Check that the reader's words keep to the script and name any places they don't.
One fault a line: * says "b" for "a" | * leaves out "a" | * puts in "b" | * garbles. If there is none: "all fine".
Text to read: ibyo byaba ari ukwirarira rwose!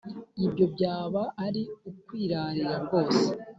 all fine